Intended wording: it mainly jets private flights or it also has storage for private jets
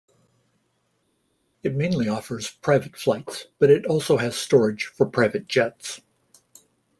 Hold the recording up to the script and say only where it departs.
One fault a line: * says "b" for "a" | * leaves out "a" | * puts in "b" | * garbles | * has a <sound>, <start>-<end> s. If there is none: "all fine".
* says "offers" for "jets"
* says "but" for "or"